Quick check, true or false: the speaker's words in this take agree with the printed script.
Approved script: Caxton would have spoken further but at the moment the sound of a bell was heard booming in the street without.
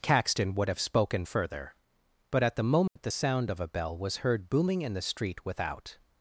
true